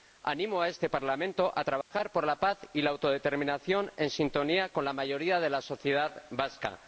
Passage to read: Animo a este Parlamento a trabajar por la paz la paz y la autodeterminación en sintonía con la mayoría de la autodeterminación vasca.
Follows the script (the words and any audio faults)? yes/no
no